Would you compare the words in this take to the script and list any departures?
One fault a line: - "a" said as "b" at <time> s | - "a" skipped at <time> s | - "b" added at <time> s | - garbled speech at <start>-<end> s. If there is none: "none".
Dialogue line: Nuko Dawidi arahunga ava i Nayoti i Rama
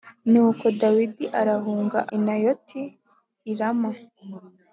- "ava" skipped at 2.0 s